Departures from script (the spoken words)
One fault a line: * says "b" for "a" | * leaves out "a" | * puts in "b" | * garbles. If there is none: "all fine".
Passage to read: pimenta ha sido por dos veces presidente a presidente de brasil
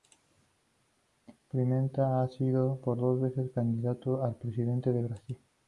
* says "candidato" for "presidente"